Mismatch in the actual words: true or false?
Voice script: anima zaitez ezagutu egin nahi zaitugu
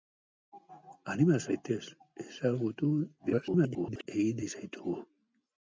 true